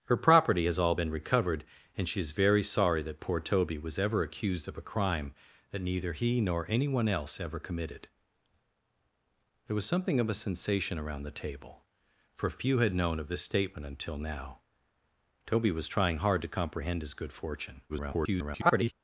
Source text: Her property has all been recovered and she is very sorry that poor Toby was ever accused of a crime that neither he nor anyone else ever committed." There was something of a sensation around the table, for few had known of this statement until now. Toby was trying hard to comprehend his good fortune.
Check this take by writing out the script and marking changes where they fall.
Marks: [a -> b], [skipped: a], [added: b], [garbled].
Her property has all been recovered and she is very sorry that poor Toby was ever accused of a crime that neither he nor anyone else ever committed." There was something of a sensation around the table, for few had known of this statement until now. Toby was trying hard to comprehend his good fortune. [garbled]